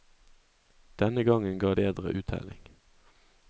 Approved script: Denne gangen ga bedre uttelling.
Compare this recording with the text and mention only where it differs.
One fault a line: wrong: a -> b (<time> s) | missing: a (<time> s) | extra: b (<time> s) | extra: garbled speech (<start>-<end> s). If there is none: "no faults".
no faults